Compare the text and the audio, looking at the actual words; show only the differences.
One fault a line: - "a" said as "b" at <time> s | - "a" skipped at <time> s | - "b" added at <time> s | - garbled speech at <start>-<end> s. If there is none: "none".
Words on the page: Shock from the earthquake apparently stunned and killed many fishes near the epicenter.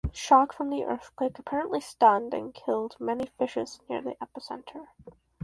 none